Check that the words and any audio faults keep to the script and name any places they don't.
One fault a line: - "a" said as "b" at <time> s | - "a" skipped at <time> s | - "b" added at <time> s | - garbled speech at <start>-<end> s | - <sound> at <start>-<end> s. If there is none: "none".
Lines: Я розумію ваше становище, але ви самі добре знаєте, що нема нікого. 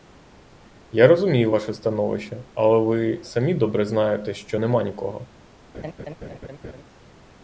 - laugh at 5.7-6.8 s